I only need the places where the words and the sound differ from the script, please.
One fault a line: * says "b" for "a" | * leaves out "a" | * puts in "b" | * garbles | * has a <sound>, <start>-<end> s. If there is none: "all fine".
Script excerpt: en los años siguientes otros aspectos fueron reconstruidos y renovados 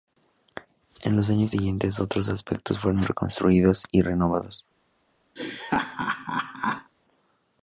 * has a laugh, 5.4-6.9 s